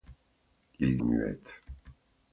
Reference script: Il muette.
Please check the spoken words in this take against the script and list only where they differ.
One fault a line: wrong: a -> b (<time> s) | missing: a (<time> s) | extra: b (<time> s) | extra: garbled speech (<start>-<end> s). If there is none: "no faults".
no faults